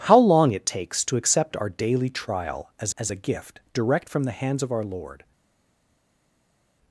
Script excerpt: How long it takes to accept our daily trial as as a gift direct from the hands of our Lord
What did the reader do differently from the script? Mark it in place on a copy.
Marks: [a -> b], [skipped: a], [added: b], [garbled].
How long it takes to accept our daily trial as as a gift direct from the hands of our Lord